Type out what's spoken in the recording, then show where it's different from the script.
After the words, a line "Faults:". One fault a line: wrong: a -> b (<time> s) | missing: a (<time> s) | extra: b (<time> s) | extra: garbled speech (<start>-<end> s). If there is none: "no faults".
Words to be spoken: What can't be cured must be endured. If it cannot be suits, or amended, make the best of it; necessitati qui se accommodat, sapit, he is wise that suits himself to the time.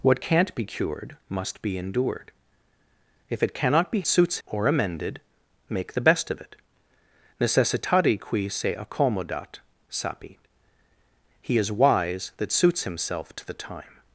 What can't be cured must be endured. If it cannot be suits, or amended, make the best of it; necessitati qui se accommodat, sapit, he is wise that suits himself to the time.
Faults:
no faults